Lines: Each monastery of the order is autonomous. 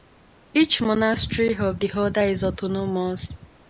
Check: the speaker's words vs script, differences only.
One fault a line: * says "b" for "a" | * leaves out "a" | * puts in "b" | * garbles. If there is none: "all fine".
all fine